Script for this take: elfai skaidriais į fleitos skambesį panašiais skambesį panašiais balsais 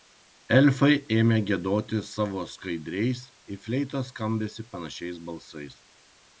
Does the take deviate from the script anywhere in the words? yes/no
yes